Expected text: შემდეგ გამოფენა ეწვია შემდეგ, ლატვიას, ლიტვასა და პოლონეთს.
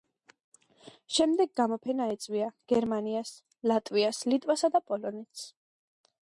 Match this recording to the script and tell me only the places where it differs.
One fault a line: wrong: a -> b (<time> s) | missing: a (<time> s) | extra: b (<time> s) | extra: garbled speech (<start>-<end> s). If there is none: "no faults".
wrong: შემდეგ -> გერმანიას (2.7 s)